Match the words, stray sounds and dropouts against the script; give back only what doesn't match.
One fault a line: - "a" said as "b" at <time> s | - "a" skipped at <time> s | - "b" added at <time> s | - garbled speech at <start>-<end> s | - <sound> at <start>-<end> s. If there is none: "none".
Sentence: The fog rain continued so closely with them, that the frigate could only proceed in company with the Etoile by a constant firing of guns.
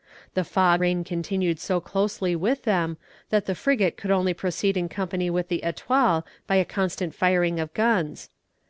none